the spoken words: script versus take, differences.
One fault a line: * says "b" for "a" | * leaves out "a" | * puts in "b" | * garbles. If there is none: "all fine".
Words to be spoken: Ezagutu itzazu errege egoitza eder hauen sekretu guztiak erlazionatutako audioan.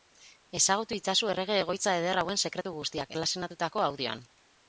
all fine